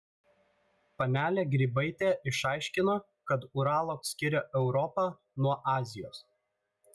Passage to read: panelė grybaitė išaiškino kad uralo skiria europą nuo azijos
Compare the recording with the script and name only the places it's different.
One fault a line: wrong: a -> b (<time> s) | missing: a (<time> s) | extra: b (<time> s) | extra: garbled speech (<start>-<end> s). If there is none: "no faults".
no faults